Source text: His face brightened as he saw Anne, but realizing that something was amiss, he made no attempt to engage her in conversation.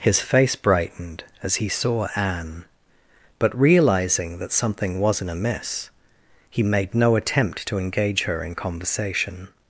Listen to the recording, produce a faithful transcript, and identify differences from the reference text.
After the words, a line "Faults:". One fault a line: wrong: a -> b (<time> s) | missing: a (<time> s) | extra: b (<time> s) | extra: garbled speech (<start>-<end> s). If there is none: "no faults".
His face brightened as he saw Anne, but realizing that something wasn't amiss, he made no attempt to engage her in conversation.
Faults:
wrong: was -> wasn't (5.0 s)